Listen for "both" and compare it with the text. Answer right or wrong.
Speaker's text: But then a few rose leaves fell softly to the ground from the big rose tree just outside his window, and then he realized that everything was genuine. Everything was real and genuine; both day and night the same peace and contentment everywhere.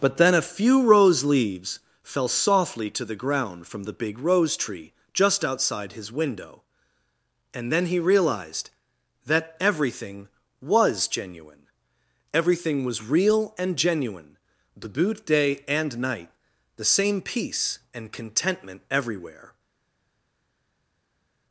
wrong